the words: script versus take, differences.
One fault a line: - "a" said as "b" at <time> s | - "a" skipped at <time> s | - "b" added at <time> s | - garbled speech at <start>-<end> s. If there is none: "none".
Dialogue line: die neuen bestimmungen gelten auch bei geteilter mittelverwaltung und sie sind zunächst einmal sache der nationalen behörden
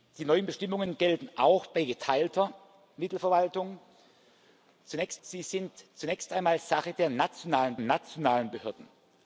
- "und" said as "zunächst" at 4.8 s
- "nationalen" added at 7.8 s